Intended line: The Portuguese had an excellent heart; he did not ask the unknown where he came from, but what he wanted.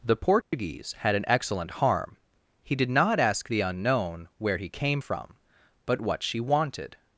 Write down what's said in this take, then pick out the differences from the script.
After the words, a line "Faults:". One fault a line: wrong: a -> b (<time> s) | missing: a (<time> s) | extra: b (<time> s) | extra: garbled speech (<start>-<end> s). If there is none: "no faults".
The Portuguese had an excellent harm; he did not ask the unknown where he came from, but what she wanted.
Faults:
wrong: heart -> harm (1.7 s)
wrong: he -> she (6.2 s)